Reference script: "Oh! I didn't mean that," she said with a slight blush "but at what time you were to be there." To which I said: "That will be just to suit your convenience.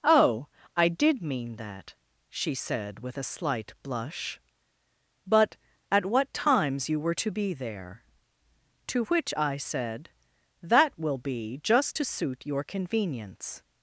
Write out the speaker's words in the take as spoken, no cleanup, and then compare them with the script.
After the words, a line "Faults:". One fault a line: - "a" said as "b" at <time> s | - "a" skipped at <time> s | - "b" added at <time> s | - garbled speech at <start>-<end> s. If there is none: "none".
"Oh! I did mean that," she said with a slight blush "but at what times you were to be there." To which I said: "That will be just to suit your convenience.
Faults:
- "didn't" said as "did" at 0.9 s
- "time" said as "times" at 6.3 s